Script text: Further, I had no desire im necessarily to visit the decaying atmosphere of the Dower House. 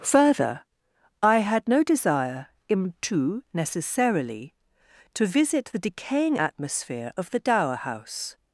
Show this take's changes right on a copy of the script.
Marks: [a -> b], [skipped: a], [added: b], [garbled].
Further, I had no desire im [added: tu] necessarily to visit the decaying atmosphere of the Dower House.